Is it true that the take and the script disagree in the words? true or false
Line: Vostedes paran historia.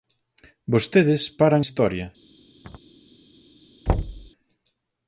false